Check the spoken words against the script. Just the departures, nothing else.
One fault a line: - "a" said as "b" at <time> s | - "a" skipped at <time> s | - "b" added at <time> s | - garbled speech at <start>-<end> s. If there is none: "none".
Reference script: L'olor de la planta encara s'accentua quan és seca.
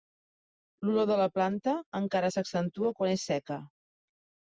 none